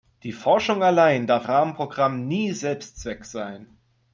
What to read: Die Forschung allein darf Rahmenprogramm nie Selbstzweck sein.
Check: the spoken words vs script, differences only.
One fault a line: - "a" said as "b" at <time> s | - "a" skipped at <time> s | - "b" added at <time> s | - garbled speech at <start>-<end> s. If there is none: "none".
none